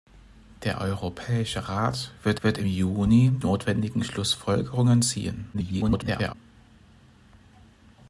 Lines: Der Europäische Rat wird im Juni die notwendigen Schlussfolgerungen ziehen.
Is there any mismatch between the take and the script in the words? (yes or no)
yes